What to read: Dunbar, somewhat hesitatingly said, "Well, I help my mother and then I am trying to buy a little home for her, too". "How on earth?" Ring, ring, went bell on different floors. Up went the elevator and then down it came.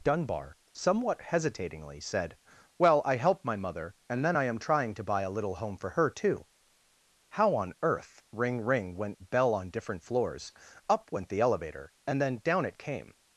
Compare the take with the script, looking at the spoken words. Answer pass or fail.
pass